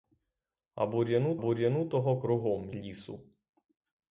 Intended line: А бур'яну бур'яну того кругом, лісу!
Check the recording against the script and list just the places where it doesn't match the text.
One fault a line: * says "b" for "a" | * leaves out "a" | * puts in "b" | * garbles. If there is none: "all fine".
all fine